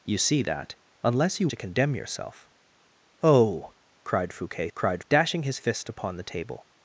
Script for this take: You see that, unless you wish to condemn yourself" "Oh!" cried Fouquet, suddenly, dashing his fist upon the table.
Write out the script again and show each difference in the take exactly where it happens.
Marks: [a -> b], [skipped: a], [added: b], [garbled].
You see that, unless you [skipped: wish] to condemn yourself" "Oh!" cried Fouquet, [suddenly, -> cried] dashing his fist upon the table.